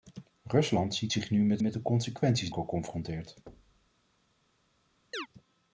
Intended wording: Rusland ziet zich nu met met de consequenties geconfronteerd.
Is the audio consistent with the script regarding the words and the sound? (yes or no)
no